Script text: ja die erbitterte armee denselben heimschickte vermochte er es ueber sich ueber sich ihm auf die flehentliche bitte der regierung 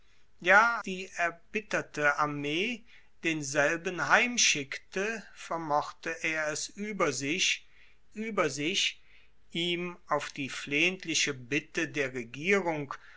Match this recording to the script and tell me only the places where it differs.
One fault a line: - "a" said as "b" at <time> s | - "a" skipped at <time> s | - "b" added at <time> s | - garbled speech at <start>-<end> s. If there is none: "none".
none